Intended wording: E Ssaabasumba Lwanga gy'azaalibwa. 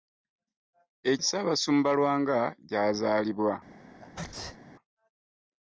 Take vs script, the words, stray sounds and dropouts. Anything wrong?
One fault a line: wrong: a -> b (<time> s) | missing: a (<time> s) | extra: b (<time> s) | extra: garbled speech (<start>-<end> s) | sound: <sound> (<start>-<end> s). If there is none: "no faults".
sound: sneeze (4.0-4.6 s)